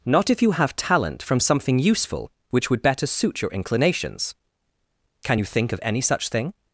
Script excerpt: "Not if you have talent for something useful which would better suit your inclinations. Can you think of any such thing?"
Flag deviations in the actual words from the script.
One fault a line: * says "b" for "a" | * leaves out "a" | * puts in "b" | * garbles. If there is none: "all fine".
* says "from" for "for"